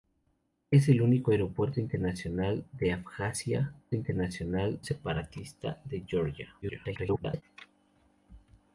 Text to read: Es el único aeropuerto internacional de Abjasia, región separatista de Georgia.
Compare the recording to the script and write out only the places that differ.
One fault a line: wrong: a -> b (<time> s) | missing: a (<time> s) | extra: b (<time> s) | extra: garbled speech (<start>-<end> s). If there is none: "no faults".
wrong: región -> internacional (3.9 s)
extra: garbled speech (6.6-7.4 s)